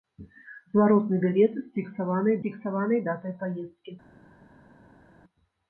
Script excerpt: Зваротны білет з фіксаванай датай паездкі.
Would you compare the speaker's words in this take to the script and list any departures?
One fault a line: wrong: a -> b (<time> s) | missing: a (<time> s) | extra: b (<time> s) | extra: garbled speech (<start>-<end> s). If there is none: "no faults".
extra: фіксаванай (2.4 s)